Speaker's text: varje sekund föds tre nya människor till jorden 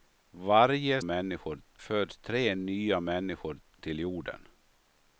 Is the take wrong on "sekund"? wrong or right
wrong